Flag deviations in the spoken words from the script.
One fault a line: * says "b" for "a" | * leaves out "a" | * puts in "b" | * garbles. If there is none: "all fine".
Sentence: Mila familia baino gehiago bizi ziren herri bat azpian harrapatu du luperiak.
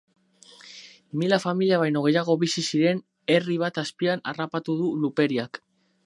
all fine